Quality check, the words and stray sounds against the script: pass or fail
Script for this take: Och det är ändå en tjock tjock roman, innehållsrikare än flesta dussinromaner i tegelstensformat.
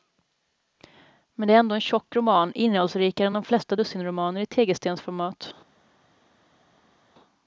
fail